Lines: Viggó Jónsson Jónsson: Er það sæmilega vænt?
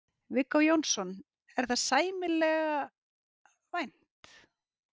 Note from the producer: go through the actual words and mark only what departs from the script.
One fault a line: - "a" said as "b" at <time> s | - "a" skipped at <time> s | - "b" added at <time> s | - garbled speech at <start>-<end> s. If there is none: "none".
- "Jónsson" skipped at 1.1 s